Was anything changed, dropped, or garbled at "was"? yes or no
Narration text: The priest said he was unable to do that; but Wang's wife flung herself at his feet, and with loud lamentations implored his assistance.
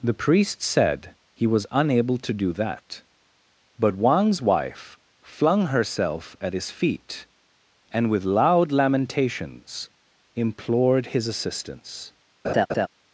no